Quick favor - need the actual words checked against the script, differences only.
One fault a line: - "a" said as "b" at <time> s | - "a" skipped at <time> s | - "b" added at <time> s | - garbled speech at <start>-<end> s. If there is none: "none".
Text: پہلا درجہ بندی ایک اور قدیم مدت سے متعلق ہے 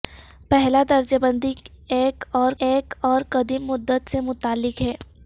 - "ایک اور" added at 2.6 s